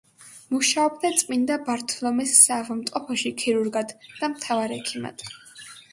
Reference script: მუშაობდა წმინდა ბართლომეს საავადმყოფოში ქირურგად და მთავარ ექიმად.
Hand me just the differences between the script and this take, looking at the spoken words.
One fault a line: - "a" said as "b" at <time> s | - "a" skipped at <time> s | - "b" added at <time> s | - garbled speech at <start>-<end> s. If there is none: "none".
none